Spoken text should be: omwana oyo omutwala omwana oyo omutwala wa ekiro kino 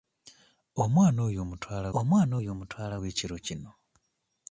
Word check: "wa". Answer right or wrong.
right